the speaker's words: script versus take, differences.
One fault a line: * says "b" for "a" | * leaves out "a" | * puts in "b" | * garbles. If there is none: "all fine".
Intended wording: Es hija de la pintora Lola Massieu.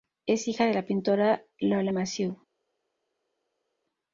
all fine